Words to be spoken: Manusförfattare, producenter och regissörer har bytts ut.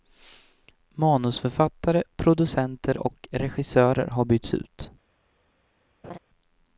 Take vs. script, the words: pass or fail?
pass